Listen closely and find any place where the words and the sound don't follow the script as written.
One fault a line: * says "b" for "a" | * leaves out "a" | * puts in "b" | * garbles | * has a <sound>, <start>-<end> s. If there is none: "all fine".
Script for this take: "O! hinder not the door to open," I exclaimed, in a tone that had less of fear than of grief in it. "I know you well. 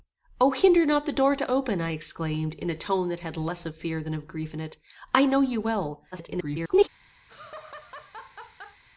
* garbles
* has a laugh, 7.3-8.8 s